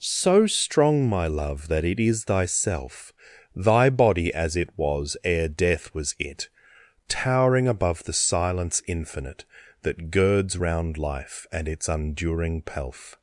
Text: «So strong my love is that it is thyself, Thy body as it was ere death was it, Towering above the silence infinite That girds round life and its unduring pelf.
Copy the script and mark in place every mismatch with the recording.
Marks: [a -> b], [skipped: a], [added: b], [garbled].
«So strong my love [skipped: is] that it is thyself, Thy body as it was ere death was it, Towering above the silence infinite That girds round life and its unduring pelf.